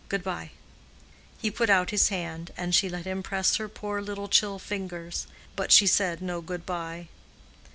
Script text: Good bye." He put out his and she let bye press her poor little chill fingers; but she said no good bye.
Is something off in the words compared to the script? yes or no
yes